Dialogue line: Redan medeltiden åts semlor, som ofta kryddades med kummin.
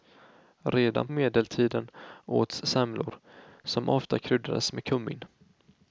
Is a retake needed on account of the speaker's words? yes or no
no